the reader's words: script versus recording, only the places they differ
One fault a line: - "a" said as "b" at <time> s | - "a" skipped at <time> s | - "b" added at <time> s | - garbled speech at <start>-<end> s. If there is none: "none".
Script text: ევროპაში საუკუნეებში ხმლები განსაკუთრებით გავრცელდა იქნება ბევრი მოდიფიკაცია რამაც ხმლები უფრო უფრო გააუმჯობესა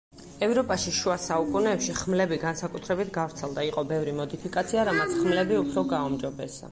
- "შუა" added at 1.0 s
- "იქნება" said as "იყო" at 3.7 s
- "უფრო" skipped at 5.8 s